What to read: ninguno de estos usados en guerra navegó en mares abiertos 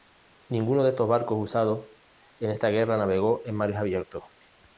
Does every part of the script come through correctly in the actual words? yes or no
no